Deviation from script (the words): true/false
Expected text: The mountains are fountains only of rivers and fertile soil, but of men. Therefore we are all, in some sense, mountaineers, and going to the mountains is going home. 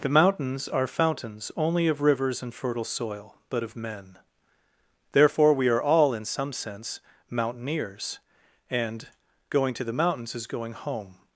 false